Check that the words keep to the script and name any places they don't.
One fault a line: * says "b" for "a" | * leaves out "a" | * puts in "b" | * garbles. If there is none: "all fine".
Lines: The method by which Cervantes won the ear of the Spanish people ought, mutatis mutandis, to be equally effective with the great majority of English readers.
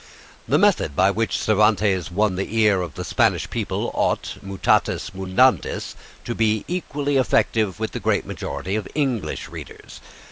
all fine